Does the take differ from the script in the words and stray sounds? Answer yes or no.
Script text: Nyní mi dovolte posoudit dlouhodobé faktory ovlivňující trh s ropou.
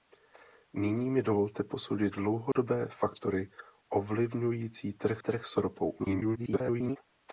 yes